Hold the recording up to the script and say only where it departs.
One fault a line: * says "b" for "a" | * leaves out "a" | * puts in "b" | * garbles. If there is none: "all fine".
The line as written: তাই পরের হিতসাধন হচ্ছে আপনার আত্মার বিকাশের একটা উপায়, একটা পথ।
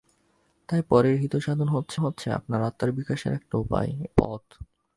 * puts in "হচ্ছে"
* leaves out "একটা"